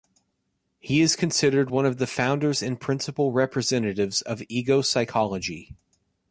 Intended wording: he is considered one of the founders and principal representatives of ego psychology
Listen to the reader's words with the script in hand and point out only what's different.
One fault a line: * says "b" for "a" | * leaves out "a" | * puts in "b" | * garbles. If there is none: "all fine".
all fine